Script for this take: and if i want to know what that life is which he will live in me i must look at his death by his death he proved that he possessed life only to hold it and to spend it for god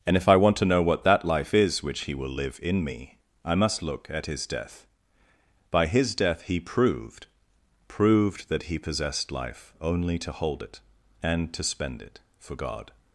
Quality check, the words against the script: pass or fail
fail